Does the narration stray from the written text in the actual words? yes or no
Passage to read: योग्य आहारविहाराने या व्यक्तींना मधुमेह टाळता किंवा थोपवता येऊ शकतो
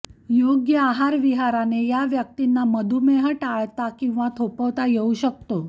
no